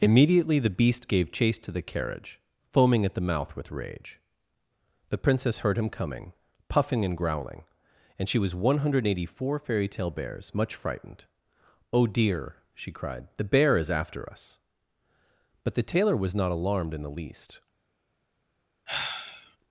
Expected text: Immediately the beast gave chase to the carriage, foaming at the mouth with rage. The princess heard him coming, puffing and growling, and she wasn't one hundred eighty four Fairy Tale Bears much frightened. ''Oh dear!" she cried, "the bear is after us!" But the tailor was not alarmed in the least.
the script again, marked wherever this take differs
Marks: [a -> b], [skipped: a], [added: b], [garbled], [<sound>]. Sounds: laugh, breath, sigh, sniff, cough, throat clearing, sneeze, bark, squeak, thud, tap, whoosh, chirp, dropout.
Immediately the beast gave chase to the carriage, foaming at the mouth with rage. The princess heard him coming, puffing and growling, and she [wasn't -> was] one hundred eighty four Fairy Tale Bears much frightened. ''Oh dear!" she cried, "the bear is after us!" But the tailor was not alarmed in the least. [sigh]